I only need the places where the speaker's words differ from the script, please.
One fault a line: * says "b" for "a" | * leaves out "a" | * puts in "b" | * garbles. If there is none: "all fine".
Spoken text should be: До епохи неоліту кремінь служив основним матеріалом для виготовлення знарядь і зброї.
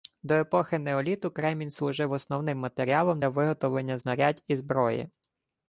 all fine